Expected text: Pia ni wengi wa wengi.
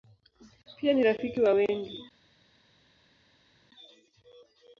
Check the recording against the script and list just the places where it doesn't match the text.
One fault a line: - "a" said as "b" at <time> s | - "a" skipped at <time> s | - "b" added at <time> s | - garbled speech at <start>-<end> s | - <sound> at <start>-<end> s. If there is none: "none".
- "wengi" said as "rafiki" at 1.0 s